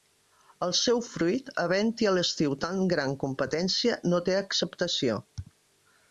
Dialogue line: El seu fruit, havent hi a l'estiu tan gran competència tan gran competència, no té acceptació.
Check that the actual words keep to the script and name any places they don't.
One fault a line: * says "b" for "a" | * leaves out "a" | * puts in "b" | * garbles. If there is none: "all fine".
* leaves out "tan gran competència"